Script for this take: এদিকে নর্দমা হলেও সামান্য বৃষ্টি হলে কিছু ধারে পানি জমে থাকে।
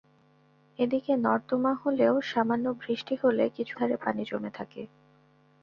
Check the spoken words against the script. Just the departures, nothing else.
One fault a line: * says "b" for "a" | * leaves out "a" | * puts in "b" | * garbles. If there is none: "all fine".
all fine